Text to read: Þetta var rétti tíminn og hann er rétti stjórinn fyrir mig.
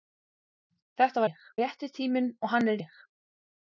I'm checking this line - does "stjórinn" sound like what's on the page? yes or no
no